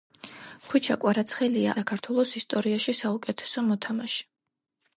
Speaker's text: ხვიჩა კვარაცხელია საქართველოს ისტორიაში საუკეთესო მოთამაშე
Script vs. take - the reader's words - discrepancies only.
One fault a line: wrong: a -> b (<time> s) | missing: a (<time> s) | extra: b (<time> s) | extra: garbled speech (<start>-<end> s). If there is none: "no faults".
no faults